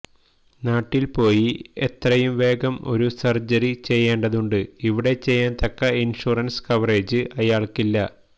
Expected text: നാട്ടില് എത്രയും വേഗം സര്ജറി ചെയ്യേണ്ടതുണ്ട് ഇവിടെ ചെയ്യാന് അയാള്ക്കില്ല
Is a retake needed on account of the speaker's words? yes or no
yes